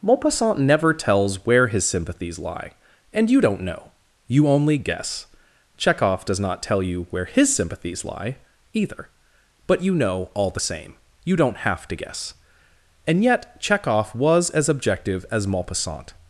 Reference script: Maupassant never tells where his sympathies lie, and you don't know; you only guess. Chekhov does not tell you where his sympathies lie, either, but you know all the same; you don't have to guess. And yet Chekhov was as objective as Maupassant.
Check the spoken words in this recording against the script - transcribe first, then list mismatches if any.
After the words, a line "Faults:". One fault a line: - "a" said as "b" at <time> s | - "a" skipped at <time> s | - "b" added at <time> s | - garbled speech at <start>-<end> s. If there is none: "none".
Maupassant never tells where his sympathies lie, and you don't know; you only guess. Chekhov does not tell you where his sympathies lie, either, but you know all the same; you don't have to guess. And yet Chekhov was as objective as Maupassant.
Faults:
none